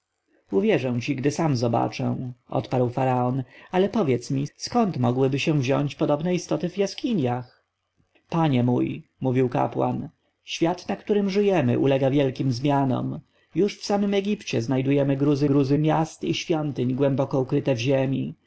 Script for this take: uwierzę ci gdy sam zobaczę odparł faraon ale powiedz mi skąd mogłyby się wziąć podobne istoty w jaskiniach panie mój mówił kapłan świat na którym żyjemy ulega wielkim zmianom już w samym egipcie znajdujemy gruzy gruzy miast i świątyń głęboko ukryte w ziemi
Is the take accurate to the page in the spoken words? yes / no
yes